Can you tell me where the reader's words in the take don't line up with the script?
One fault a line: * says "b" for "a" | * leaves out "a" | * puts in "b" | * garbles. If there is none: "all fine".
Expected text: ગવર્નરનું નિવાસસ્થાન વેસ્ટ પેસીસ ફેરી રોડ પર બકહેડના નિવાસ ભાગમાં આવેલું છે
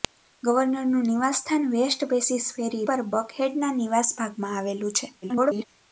* leaves out "રોડ"
* garbles